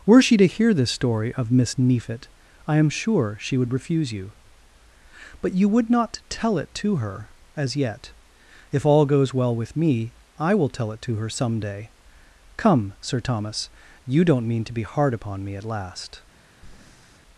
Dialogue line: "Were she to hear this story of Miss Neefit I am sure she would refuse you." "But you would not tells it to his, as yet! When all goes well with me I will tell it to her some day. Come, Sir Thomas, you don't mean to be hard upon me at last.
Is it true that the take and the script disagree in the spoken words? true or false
true